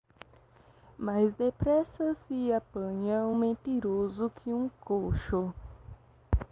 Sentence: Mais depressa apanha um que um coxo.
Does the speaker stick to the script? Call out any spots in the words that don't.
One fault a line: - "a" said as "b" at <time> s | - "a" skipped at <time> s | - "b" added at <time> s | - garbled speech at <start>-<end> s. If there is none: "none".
- "se" added at 2.3 s
- "mentiroso" added at 3.3 s